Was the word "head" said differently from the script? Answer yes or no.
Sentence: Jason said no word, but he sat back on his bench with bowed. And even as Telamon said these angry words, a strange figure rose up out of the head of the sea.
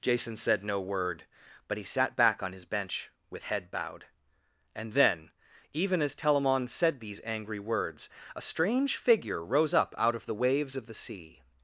yes